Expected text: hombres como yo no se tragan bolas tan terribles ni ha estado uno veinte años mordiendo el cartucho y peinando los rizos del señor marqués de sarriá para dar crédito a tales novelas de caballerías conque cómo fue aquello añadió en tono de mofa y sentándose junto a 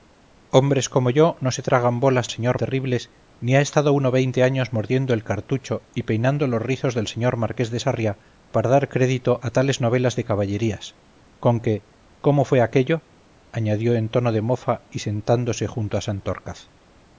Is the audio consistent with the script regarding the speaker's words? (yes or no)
no